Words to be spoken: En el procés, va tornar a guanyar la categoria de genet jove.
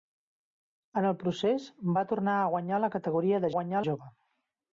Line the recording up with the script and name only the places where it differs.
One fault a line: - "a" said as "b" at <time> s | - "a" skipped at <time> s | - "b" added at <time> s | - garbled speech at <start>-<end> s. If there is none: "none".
- "genet" said as "guanyar" at 3.6 s